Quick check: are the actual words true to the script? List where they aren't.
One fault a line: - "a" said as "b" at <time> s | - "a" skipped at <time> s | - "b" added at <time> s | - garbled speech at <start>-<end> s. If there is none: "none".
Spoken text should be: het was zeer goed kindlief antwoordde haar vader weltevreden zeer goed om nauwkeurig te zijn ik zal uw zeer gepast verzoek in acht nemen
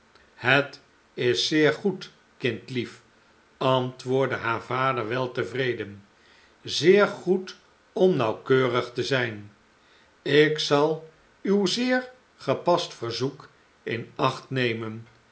- "was" said as "is" at 1.1 s